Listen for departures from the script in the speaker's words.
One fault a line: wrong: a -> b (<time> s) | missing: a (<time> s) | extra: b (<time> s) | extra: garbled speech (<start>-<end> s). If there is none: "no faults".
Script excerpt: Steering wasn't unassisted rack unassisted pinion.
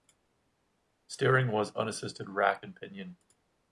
wrong: wasn't -> was (1.5 s)
wrong: unassisted -> and (2.6 s)